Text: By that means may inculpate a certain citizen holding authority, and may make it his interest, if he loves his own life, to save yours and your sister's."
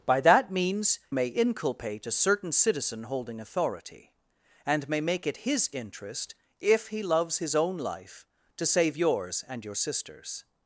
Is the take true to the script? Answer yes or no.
yes